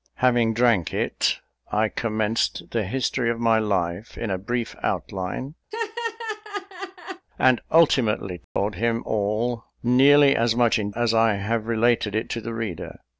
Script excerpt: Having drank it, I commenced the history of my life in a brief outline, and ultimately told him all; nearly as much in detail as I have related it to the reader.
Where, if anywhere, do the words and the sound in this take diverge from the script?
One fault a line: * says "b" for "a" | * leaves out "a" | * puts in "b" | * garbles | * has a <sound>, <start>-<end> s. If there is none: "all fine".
* has a laugh, 5.7-7.3 s
* has a dropout, 8.4-8.6 s
* leaves out "detail"